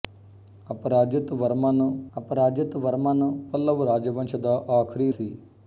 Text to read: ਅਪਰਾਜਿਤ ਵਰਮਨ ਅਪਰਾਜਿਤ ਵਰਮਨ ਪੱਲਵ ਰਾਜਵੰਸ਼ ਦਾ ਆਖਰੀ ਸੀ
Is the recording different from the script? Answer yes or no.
no